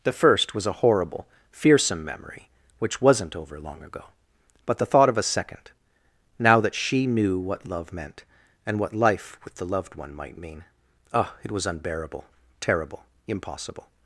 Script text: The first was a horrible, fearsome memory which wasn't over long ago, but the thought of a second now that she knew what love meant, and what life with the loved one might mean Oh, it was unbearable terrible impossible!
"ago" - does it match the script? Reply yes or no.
yes